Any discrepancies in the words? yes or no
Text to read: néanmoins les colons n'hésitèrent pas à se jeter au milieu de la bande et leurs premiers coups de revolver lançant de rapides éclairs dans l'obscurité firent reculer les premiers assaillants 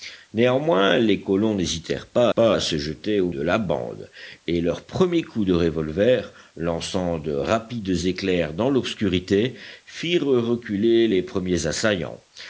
yes